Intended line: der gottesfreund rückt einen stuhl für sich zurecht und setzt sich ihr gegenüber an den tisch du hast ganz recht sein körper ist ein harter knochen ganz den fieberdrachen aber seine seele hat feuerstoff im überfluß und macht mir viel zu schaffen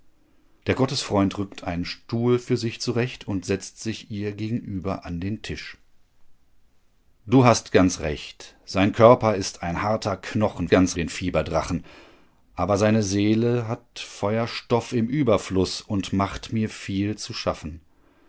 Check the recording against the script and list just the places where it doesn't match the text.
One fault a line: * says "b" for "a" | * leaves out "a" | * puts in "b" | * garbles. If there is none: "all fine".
all fine